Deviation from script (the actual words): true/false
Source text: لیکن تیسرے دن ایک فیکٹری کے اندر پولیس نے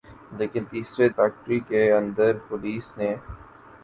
true